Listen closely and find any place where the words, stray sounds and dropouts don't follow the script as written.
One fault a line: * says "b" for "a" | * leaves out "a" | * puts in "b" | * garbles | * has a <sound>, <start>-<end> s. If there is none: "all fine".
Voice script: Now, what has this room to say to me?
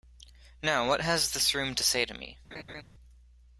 * has a laugh, 2.5-2.8 s